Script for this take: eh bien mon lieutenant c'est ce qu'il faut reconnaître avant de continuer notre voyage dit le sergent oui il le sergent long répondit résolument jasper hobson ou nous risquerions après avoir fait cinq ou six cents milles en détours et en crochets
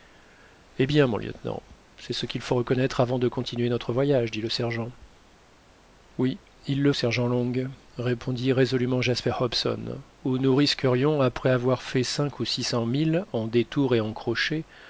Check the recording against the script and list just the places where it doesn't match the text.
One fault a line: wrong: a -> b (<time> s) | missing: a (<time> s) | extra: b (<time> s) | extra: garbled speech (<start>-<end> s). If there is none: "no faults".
no faults